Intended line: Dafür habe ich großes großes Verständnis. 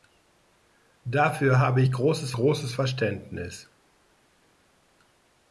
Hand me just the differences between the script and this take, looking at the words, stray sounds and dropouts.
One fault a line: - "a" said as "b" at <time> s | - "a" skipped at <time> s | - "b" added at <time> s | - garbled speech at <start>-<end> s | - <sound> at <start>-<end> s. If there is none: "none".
none